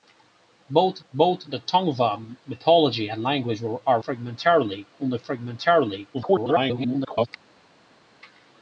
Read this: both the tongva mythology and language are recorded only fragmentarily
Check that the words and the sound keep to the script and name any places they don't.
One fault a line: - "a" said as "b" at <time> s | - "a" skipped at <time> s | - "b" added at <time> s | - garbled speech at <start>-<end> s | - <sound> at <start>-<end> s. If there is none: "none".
- "both" added at 1.1 s
- "recorded" said as "fragmentarily" at 4.0 s
- garbled speech at 6.1-7.3 s